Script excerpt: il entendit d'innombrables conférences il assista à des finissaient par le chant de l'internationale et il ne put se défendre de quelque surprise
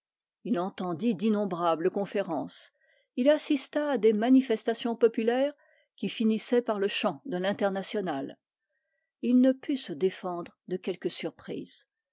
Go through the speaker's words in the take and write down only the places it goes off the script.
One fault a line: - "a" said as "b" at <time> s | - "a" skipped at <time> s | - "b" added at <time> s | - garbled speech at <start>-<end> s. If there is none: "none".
- "manifestations populaires qui" added at 4.1 s